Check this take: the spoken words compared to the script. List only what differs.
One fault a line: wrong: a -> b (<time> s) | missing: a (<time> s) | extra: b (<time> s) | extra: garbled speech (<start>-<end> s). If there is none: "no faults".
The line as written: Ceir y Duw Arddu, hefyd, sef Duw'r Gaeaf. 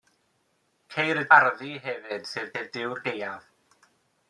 missing: Duw (1.3 s)
extra: sef (2.5 s)